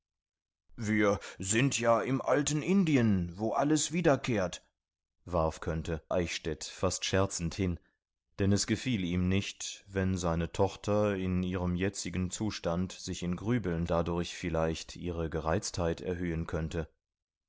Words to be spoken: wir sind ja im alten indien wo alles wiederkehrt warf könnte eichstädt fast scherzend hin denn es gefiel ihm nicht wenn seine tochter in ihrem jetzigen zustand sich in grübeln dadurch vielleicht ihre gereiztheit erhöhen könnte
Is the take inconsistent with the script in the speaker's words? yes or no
no